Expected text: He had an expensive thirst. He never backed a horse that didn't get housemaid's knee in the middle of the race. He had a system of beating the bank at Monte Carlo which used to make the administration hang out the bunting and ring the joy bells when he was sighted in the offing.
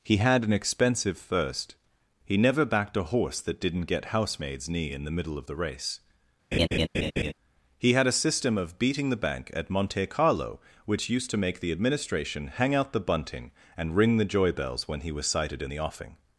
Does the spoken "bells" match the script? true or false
true